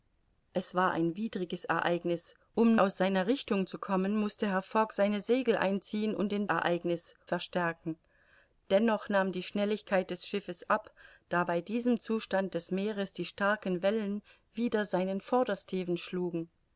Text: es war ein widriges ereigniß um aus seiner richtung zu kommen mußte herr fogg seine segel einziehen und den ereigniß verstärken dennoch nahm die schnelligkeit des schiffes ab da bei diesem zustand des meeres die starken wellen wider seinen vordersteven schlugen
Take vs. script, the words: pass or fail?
pass